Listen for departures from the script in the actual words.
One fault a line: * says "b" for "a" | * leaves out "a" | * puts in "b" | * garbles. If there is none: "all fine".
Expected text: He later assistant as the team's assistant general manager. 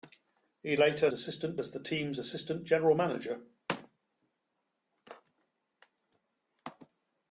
all fine